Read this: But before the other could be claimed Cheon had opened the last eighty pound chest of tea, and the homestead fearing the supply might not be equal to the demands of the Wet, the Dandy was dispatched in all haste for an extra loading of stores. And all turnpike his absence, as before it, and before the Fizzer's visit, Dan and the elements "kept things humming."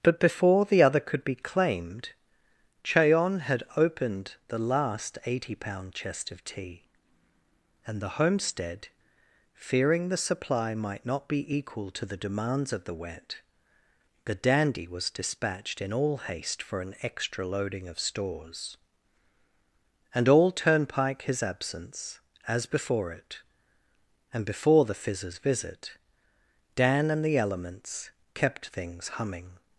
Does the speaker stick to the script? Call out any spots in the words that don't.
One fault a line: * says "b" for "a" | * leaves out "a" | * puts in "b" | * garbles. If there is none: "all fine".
all fine